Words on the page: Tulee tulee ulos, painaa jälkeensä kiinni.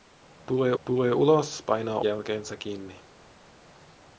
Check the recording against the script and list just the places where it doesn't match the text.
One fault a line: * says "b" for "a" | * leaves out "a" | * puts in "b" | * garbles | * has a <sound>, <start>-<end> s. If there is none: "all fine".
all fine